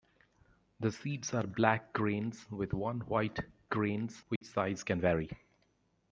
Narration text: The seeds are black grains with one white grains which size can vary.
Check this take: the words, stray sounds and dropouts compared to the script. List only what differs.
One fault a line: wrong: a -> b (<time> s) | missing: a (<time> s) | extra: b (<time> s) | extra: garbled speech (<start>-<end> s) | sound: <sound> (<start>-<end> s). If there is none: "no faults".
sound: dropout (4.4-4.4 s)